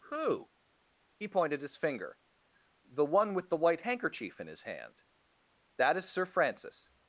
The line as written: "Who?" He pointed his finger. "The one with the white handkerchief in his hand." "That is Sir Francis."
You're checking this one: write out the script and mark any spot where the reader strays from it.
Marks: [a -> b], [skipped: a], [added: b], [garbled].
"Who?" He pointed his finger. "The one with the white handkerchief in his hand." "That is Sir Francis."